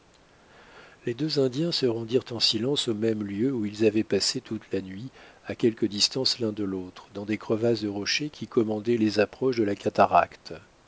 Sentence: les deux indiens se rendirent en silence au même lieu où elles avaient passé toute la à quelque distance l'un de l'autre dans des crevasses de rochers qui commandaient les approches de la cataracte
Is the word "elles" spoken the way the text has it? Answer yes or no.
no